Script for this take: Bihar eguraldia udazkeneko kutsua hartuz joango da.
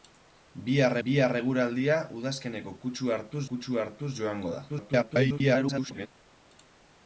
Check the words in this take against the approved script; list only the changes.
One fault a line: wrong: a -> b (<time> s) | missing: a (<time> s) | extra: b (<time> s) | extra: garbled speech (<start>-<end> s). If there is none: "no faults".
extra: bihar (1.1 s)
extra: kutsua hartuz (3.5 s)
extra: garbled speech (4.7-6.1 s)